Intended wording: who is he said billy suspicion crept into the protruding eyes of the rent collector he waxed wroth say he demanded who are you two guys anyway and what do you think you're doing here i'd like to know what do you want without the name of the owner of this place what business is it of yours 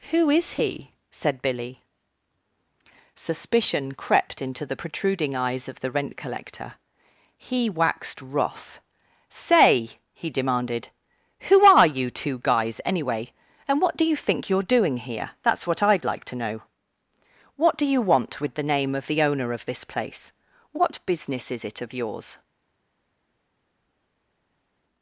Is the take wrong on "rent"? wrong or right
right